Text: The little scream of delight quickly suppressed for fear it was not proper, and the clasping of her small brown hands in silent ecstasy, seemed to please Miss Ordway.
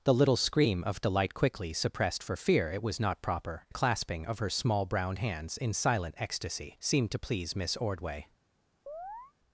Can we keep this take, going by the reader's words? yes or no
no